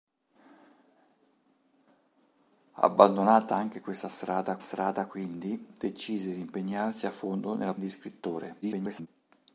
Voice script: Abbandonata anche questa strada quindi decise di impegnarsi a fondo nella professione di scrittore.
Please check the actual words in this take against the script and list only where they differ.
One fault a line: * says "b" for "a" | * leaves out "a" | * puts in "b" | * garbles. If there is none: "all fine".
* puts in "strada"
* leaves out "professione"
* garbles